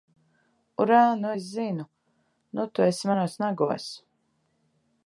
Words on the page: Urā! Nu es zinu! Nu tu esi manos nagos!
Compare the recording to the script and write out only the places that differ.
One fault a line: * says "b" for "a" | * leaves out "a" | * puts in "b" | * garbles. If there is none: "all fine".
all fine